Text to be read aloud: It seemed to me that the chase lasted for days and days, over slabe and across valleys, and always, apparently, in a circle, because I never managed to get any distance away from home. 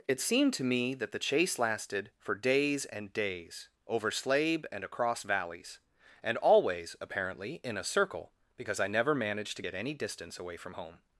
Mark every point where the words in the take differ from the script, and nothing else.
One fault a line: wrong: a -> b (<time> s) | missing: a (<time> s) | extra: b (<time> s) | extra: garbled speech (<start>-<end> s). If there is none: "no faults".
no faults